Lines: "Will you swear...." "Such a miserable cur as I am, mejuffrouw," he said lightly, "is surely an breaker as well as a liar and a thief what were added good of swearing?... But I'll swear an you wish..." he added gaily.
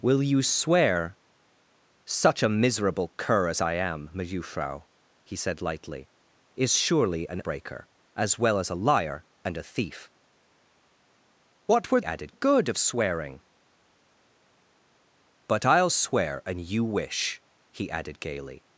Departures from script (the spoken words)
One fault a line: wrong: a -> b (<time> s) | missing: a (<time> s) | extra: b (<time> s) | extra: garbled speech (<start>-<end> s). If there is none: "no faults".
no faults